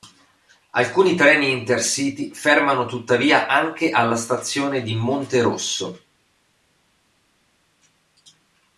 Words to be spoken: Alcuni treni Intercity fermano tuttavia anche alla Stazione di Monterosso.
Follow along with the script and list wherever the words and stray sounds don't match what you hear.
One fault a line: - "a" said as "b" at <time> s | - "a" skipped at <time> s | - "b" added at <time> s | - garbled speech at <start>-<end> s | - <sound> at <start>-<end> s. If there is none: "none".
none